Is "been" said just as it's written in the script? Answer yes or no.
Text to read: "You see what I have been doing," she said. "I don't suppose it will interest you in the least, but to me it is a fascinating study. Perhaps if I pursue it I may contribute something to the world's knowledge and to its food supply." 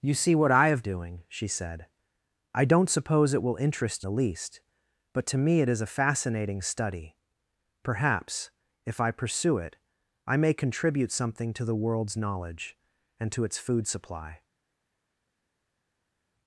no